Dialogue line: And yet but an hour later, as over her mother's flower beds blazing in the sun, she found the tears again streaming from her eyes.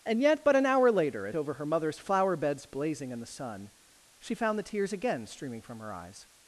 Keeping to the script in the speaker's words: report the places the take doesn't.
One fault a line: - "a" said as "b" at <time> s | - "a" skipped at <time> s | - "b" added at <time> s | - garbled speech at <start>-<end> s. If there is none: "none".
none